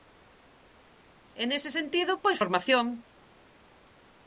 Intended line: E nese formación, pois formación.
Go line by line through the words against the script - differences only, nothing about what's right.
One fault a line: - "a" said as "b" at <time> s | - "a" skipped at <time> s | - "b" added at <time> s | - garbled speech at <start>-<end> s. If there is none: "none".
- "formación" said as "sentido" at 1.8 s